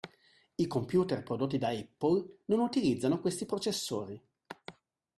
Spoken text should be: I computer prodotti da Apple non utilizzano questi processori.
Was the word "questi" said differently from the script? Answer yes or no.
no